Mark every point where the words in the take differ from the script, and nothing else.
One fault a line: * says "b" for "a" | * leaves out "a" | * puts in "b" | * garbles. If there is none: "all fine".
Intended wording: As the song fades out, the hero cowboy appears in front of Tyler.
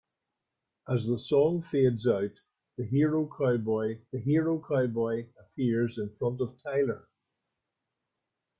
* puts in "the hero cowboy"